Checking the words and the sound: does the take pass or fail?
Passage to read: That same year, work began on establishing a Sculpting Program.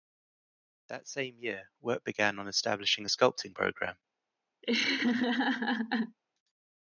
fail